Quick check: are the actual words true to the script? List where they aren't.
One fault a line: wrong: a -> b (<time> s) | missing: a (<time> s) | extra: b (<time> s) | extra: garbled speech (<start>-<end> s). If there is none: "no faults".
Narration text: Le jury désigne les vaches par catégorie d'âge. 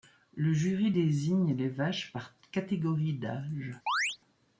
no faults